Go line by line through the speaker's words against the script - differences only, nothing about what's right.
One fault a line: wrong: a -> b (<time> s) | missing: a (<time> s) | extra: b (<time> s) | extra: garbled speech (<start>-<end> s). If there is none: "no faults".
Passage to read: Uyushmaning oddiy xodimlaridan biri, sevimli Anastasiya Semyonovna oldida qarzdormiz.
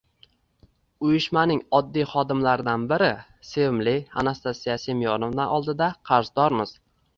no faults